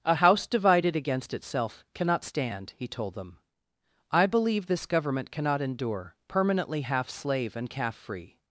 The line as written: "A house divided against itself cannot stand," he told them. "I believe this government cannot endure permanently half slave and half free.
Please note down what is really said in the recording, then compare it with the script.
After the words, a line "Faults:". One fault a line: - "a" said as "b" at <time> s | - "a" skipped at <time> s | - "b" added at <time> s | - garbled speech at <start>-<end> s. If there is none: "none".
"A house divided against itself cannot stand," he told them. "I believe this government cannot endure permanently half slave and calf free.
Faults:
- "half" said as "calf" at 7.7 s